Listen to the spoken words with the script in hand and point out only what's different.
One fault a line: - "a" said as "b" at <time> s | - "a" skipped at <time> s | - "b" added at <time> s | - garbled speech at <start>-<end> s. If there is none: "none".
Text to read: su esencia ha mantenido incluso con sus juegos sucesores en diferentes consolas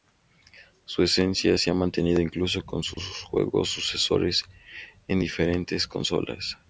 - "se" added at 1.6 s